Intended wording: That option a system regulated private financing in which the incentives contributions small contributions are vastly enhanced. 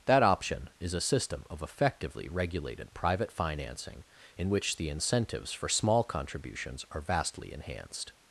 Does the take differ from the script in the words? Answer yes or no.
yes